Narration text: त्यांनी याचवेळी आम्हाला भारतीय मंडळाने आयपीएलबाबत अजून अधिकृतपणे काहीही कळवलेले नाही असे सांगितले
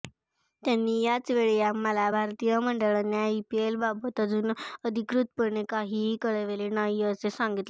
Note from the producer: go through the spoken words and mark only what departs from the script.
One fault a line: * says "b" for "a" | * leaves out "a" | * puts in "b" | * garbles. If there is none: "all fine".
all fine